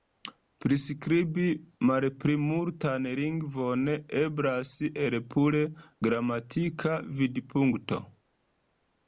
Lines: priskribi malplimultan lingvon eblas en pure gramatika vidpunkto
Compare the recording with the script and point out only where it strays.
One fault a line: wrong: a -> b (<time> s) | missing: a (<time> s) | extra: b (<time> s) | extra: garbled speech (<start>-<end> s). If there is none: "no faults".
wrong: en -> el (5.0 s)